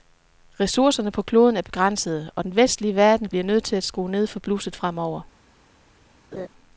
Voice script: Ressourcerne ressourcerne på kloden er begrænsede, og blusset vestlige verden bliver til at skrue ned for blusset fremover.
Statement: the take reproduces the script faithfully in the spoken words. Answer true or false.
false